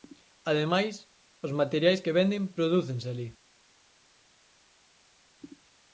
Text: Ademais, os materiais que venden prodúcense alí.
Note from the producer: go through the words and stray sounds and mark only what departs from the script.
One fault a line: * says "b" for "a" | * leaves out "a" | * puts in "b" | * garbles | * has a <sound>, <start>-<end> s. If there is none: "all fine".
all fine